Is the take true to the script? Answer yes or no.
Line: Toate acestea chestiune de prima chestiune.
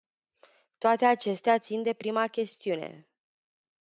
no